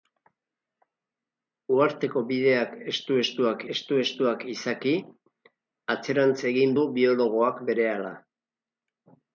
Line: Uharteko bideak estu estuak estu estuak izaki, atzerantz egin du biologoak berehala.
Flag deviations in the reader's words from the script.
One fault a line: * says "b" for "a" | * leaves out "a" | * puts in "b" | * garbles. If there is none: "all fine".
all fine